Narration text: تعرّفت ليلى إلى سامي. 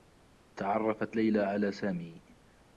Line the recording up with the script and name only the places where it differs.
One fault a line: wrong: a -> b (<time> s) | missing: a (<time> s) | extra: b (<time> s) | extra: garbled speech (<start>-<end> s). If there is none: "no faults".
wrong: إلى -> على (1.4 s)